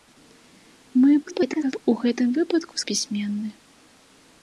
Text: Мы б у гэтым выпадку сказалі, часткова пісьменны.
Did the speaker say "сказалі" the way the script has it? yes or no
no